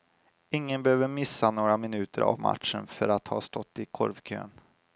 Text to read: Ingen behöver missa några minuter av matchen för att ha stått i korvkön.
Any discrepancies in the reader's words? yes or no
no